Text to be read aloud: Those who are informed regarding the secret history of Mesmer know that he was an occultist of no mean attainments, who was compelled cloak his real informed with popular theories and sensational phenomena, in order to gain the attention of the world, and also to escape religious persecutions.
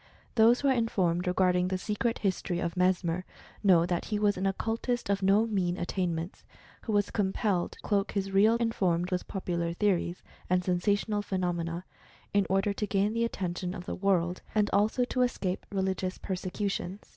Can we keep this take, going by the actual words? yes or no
yes